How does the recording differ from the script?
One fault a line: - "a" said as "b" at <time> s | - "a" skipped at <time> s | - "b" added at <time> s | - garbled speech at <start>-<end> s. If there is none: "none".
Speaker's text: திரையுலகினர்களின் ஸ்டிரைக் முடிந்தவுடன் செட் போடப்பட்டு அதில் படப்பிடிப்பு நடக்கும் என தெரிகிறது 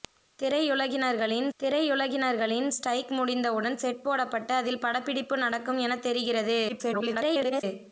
- "திரையுலகினர்களின்" added at 1.6 s
- garbled speech at 6.7-7.6 s